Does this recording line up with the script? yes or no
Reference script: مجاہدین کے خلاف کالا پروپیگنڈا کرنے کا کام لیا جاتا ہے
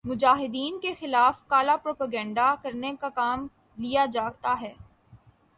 yes